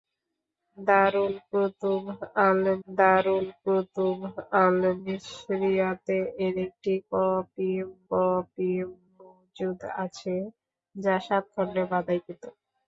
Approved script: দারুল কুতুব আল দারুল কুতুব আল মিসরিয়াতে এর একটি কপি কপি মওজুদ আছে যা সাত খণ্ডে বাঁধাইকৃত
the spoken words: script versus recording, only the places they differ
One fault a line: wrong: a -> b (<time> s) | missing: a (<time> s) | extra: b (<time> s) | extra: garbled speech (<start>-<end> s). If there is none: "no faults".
no faults